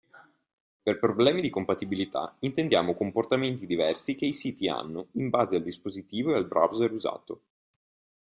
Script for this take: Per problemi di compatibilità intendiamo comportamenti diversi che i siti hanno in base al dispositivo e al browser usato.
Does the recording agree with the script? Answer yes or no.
yes